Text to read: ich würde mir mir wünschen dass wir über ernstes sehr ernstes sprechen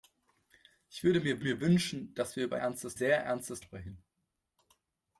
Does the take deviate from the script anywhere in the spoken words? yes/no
no